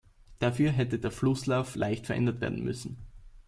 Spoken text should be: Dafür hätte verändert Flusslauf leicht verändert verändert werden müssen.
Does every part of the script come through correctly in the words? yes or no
no